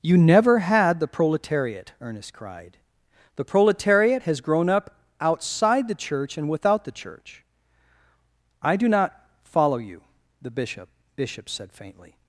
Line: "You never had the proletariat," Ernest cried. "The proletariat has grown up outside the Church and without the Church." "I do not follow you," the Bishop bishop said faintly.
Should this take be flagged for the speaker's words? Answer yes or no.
no